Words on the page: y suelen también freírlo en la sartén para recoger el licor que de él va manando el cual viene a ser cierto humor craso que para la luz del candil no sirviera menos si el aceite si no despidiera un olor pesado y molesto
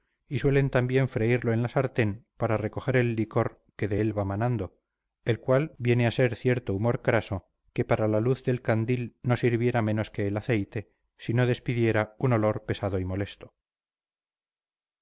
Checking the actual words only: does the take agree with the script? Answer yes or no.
no